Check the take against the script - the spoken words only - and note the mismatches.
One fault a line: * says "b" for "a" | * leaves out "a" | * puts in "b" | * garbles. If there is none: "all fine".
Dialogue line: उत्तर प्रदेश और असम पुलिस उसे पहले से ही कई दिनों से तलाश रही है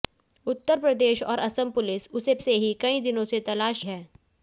* leaves out "पहले"
* leaves out "रही"